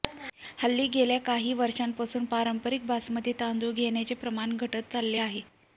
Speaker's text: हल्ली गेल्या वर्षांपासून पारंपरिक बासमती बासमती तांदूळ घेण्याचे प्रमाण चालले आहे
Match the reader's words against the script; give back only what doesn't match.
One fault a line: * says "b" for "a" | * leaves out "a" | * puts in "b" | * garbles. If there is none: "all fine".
* puts in "काही"
* leaves out "बासमती"
* puts in "घटत"